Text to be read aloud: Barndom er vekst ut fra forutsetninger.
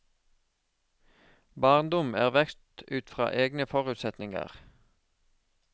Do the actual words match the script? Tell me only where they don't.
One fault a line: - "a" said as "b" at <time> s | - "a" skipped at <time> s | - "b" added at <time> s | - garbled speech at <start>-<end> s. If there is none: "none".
- "egne" added at 3.4 s